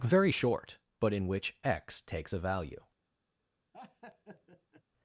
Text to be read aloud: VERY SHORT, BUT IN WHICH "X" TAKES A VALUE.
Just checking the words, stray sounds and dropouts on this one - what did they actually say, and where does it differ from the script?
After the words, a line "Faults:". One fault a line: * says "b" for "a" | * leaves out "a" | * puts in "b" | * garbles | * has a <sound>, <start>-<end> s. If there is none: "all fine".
VERY SHORT, BUT IN WHICH "X" TAKES A VALUE.
Faults:
* has a laugh, 3.7-4.8 s